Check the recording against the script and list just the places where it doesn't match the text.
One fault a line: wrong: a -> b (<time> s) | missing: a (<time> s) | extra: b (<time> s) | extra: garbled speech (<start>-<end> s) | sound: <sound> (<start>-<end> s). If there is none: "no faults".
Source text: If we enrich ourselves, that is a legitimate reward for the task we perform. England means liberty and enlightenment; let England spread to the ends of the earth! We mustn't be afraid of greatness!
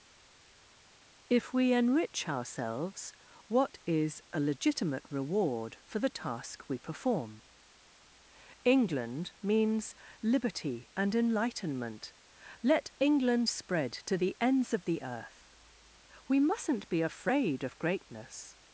wrong: that -> what (3.5 s)